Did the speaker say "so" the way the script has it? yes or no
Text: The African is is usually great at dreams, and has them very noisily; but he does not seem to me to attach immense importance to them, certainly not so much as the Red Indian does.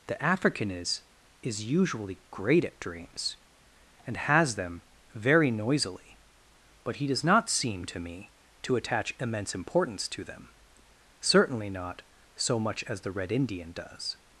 yes